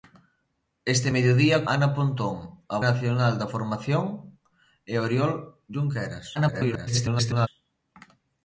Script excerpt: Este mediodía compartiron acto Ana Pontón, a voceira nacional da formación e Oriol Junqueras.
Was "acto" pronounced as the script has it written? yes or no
no